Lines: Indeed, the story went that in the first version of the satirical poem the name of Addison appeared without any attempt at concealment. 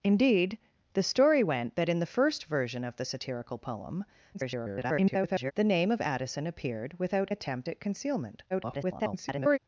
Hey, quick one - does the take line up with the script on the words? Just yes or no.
no